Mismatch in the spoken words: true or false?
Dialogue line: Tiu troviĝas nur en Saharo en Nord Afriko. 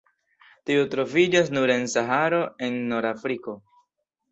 false